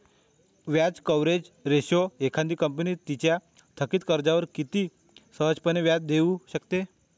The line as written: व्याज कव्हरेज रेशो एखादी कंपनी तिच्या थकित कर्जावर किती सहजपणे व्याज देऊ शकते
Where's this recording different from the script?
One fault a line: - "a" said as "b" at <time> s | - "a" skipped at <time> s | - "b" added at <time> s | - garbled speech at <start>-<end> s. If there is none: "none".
none